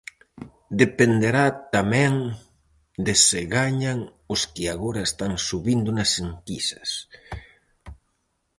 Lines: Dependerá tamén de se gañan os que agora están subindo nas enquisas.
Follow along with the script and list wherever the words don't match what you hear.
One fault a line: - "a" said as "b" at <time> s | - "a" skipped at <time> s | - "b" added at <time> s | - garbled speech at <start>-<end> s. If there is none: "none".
none